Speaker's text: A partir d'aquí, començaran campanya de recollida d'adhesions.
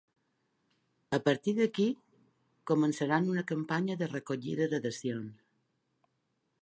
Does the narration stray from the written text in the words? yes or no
yes